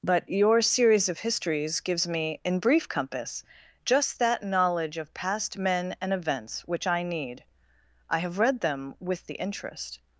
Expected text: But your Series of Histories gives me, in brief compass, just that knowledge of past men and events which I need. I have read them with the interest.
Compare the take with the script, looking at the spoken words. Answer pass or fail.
pass